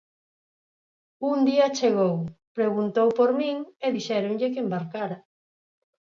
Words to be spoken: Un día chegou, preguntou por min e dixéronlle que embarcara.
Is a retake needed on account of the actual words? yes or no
no